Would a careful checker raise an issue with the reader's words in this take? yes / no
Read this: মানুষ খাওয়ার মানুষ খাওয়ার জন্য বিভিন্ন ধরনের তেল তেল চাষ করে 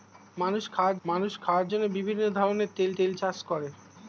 no